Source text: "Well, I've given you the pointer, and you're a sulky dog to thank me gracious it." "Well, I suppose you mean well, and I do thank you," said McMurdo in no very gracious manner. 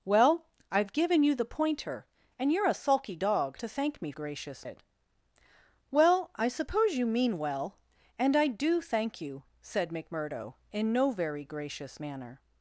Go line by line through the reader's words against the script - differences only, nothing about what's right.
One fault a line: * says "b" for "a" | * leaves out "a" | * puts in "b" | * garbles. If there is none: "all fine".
all fine